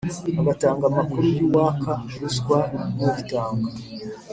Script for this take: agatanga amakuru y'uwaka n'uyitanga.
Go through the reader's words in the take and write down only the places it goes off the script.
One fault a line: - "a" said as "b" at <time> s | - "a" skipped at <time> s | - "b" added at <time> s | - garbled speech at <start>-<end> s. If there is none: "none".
- "ruswa" added at 2.2 s